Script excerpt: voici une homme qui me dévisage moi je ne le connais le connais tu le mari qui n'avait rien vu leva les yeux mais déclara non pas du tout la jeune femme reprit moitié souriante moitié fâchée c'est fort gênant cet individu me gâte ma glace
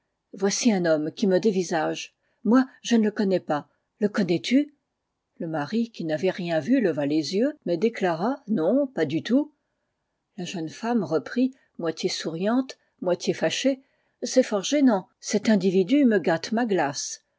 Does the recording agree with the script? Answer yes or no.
no